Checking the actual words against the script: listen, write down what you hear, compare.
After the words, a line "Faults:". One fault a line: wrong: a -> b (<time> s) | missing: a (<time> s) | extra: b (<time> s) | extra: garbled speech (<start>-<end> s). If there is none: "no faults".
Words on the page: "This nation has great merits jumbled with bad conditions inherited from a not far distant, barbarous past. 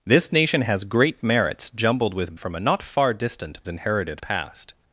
"This nation has great merits jumbled with from a not far distant, inherited past.
Faults:
missing: bad conditions inherited (2.4 s)
wrong: barbarous -> inherited (3.7 s)